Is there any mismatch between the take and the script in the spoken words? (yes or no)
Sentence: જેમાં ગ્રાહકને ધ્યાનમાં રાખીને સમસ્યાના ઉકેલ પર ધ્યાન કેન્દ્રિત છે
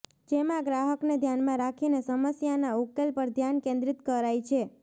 yes